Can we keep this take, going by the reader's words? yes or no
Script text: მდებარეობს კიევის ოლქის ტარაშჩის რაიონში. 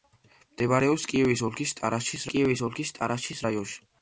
no